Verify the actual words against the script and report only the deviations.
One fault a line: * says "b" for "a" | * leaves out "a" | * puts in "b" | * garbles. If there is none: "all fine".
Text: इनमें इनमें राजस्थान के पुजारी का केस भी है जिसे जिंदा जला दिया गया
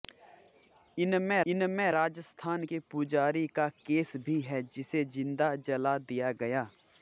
all fine